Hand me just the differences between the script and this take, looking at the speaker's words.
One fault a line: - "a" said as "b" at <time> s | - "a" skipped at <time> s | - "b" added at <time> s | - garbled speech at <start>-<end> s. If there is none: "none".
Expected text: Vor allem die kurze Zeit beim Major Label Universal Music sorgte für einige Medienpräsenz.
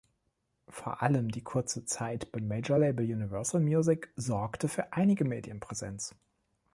none